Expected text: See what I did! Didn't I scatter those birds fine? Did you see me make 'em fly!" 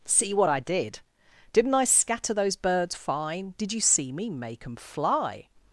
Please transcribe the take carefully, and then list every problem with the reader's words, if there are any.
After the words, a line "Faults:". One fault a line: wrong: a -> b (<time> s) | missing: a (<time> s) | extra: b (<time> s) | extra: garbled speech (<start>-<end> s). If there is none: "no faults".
See what I did! Didn't I scatter those birds fine? Did you see me make 'em fly!"
Faults:
no faults